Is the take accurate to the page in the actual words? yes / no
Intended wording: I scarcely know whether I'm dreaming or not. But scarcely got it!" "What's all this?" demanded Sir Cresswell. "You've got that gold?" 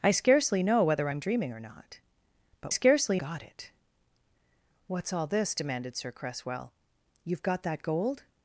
yes